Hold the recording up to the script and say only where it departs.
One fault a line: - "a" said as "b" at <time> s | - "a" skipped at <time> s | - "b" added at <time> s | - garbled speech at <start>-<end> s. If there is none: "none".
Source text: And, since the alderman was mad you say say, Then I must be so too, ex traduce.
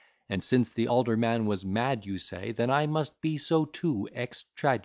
- "say" skipped at 2.5 s